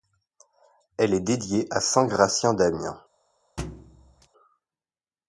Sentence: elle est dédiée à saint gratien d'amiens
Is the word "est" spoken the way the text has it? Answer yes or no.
yes